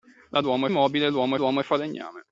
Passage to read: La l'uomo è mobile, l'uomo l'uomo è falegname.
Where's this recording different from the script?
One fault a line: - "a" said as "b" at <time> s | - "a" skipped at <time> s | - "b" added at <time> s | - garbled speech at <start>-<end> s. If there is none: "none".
none